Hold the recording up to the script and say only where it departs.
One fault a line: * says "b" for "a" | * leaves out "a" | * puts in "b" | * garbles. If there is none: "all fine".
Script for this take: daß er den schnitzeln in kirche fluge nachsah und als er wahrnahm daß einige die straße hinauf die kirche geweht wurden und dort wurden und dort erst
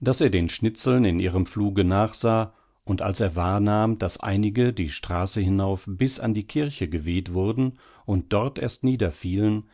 * says "ihrem" for "kirche"
* puts in "bis an"
* leaves out "wurden und dort"